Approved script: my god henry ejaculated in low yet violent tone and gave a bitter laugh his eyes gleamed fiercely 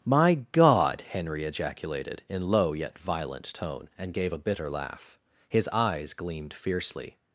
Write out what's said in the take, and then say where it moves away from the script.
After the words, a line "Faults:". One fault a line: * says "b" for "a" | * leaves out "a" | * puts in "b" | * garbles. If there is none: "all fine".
my god henry ejaculated in low yet violent tone and gave a bitter laugh his eyes gleamed fiercely
Faults:
all fine